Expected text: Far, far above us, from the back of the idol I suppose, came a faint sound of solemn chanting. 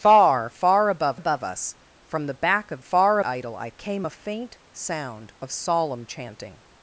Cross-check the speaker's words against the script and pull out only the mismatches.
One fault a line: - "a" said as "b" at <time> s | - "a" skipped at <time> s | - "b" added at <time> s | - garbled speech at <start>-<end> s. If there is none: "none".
- "above" added at 1.1 s
- "the" said as "far" at 2.8 s
- "suppose" skipped at 3.7 s